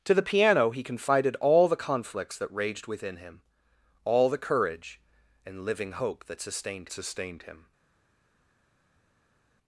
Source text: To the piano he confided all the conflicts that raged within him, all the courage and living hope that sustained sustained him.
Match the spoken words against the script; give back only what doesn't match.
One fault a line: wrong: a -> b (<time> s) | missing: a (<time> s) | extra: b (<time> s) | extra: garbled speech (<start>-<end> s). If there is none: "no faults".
no faults